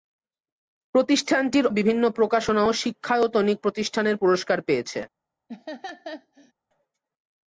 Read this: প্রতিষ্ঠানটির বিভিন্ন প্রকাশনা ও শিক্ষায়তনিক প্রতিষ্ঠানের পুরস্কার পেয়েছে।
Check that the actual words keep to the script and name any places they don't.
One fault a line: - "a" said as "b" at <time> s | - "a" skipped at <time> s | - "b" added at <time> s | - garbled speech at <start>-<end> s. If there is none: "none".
none